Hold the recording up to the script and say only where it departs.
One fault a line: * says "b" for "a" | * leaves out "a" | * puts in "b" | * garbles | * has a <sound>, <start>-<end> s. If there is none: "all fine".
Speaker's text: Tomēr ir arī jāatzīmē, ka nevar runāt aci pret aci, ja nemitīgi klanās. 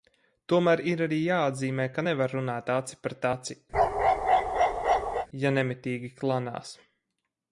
* has a bark, 3.7-5.3 s